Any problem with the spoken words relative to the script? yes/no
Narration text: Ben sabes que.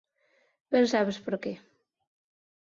yes